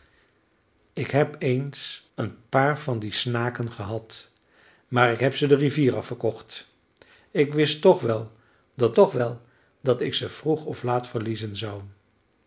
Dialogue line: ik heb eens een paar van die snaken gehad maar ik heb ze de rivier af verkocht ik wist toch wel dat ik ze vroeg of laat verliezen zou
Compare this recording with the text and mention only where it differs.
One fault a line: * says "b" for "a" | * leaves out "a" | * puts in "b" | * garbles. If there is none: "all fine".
* puts in "toch wel dat"